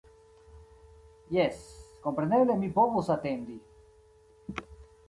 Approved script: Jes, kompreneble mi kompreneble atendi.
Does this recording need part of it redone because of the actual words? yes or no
yes